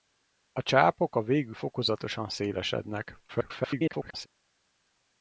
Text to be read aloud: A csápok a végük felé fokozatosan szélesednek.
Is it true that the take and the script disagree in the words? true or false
true